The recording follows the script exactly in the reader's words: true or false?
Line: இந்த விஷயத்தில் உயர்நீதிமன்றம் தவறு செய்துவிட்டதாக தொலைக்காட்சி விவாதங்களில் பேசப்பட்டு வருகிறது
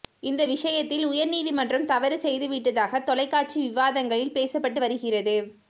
true